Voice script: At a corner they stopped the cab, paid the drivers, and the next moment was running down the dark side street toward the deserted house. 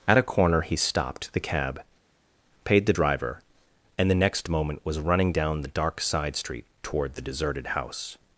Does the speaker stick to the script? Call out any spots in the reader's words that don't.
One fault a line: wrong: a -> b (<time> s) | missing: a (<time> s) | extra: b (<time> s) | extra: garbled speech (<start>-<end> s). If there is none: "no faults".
wrong: they -> he (0.6 s)
wrong: drivers -> driver (2.9 s)